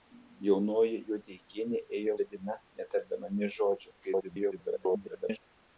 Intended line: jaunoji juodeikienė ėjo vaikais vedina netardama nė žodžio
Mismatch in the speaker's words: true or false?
true